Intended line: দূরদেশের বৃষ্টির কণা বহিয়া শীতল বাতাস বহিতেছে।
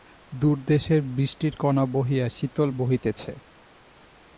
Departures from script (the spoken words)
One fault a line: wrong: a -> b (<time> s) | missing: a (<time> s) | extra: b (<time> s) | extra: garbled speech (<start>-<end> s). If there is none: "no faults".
missing: বাতাস (2.7 s)